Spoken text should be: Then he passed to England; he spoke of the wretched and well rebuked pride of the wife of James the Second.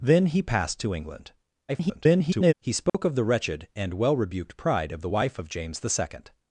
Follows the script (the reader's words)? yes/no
no